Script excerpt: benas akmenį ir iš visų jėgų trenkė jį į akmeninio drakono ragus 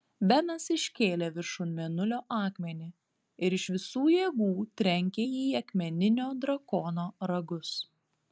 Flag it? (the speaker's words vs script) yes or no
yes